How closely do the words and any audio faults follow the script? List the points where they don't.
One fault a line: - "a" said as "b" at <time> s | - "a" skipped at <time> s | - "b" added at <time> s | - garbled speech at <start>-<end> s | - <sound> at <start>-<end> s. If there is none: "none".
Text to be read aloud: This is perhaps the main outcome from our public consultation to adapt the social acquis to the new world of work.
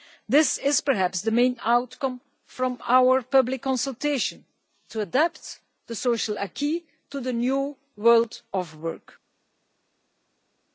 none